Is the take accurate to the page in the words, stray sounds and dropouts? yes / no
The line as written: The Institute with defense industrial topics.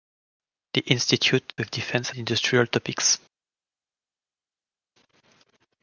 yes